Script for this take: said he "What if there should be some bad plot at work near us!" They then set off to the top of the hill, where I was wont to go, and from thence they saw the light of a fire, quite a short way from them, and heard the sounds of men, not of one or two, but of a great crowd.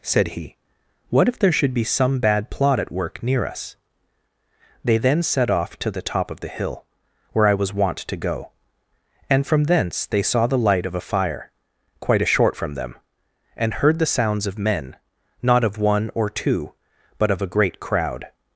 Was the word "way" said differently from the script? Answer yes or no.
yes